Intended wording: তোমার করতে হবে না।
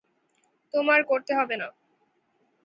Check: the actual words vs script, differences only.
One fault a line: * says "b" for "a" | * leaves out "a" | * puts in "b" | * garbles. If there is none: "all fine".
all fine